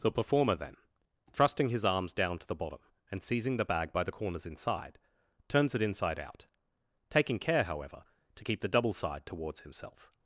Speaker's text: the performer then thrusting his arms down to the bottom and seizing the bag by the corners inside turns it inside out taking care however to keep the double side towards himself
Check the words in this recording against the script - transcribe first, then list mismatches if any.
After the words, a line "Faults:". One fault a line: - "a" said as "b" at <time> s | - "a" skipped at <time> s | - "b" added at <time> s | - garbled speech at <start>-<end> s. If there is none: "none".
the performer then thrusting his arms down to the bottom and seizing the bag by the corners inside turns it inside out taking care however to keep the double side towards himself
Faults:
none